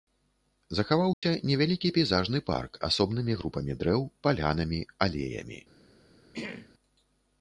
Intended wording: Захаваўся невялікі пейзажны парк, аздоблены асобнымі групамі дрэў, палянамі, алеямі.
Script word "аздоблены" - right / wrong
wrong